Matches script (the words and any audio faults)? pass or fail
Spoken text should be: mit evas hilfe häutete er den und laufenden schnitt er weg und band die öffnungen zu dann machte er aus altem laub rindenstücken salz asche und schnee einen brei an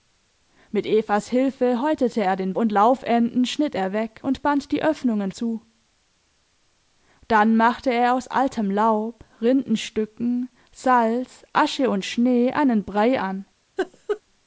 fail